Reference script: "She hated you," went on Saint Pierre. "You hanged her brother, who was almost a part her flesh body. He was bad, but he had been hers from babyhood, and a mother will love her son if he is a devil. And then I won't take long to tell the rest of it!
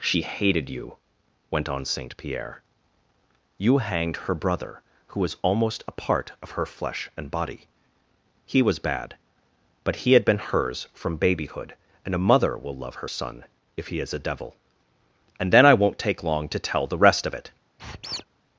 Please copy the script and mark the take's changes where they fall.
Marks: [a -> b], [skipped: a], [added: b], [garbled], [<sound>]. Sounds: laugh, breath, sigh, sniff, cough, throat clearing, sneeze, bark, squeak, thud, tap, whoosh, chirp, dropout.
"She hated you," went on Saint Pierre. "You hanged her brother, who was almost a part [added: of] her flesh [added: and] body. He was bad, but he had been hers from babyhood, and a mother will love her son if he is a devil. And then I won't take long to tell the rest of it! [squeak]